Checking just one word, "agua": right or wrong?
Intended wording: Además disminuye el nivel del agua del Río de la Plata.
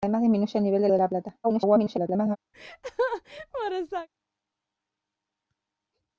wrong